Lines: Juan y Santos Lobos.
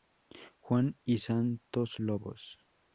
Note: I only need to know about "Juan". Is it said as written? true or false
true